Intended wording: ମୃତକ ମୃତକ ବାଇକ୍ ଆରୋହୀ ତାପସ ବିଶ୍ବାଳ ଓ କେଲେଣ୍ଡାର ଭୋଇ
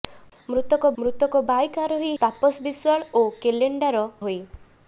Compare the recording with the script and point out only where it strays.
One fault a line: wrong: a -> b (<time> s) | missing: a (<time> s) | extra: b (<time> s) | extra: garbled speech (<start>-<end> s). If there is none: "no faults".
no faults